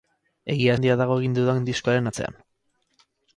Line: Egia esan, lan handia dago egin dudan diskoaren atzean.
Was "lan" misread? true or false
true